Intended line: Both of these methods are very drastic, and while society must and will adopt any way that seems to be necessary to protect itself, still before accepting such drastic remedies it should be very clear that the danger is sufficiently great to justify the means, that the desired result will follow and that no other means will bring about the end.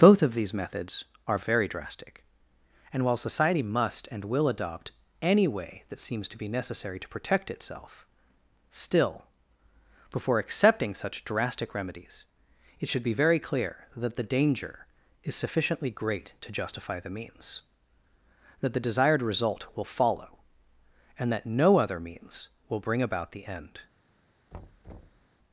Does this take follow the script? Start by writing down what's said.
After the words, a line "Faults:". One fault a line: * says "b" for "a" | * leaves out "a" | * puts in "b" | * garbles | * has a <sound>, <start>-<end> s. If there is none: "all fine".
Both of these methods are very drastic, and while society must and will adopt any way that seems to be necessary to protect itself, still before accepting such drastic remedies it should be very clear that the danger is sufficiently great to justify the means, that the desired result will follow and that no other means will bring about the end.
Faults:
* has a thud, 24.5-25.3 s